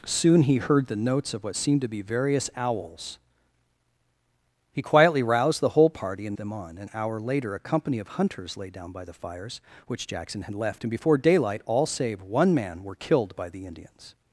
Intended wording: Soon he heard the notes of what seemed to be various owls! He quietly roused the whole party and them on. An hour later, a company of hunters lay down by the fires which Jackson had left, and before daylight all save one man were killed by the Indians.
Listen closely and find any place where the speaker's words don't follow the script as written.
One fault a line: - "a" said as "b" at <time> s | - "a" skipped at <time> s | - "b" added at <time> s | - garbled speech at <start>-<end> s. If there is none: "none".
none